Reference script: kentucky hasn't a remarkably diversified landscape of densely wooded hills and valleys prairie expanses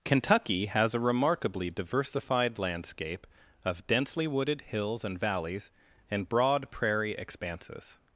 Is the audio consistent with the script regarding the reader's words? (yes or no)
no